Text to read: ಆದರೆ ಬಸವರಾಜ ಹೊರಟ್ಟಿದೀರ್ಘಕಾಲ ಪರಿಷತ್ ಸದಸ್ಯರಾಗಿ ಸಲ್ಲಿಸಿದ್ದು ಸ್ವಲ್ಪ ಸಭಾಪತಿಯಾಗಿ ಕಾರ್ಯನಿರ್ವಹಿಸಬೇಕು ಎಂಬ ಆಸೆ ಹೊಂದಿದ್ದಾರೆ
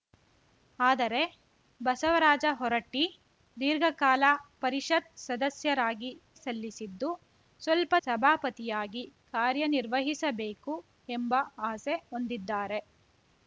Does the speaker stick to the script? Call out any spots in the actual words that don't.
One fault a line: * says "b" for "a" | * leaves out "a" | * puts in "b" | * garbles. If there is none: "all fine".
all fine